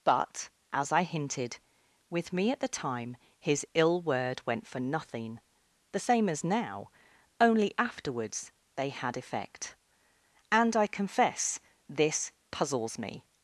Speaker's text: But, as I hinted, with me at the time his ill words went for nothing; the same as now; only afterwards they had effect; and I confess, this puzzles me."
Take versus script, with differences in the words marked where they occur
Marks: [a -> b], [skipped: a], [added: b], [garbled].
But, as I hinted, with me at the time his ill [words -> word] went for nothing; the same as now; only afterwards they had effect; and I confess, this puzzles me."